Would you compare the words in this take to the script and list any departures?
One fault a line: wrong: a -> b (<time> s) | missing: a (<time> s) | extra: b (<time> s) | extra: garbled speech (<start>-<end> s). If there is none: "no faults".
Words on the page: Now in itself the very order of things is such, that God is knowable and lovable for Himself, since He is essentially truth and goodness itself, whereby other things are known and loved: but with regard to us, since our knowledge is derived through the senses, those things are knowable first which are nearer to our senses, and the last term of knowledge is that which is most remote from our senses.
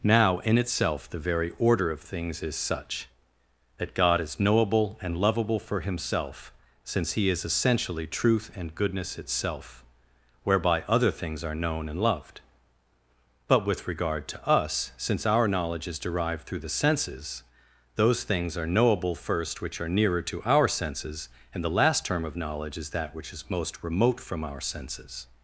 no faults